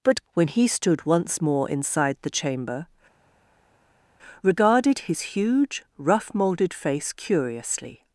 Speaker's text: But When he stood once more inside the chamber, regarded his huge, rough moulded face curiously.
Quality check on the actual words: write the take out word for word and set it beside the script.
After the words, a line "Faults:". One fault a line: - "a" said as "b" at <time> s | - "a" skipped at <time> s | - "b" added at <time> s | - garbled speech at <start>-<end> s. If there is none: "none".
But When he stood once more inside the chamber, regarded his huge, rough moulded face curiously.
Faults:
none